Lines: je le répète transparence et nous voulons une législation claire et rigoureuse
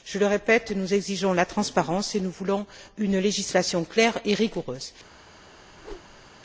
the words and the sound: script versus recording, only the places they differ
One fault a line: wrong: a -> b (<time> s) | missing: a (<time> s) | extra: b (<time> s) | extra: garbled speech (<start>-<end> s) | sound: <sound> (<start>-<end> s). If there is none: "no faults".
extra: nous exigeons la (0.7 s)
sound: whoosh (5.7-6.3 s)